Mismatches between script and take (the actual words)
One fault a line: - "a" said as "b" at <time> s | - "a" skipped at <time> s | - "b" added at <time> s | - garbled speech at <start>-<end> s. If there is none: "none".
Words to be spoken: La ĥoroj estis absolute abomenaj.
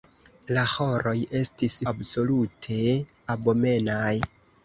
none